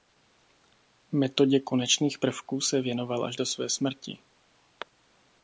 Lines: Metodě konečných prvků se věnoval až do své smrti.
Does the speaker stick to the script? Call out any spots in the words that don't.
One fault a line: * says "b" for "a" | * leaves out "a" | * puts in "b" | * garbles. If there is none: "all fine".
all fine